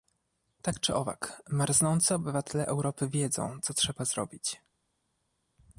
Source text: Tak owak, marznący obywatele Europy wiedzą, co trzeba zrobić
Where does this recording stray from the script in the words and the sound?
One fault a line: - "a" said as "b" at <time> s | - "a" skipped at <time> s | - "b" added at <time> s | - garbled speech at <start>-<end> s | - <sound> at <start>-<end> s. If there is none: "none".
- "czy" added at 0.8 s